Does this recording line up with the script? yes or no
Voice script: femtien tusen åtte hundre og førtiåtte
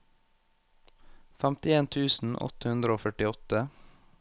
yes